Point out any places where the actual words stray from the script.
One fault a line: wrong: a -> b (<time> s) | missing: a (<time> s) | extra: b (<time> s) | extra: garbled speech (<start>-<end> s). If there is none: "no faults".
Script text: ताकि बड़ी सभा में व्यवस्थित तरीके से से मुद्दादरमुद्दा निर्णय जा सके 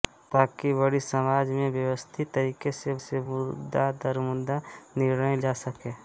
no faults